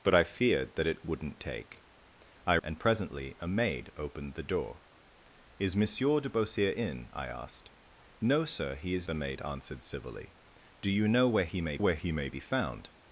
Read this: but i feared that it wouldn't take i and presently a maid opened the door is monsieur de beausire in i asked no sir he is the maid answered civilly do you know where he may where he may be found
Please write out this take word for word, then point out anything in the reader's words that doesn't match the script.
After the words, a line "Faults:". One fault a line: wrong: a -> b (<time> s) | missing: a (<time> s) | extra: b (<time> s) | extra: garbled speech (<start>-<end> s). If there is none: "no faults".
but i feared that it wouldn't take i and presently a maid opened the door is monsieur de beausire in i asked no sir he is the maid answered civilly do you know where he may where he may be found
Faults:
no faults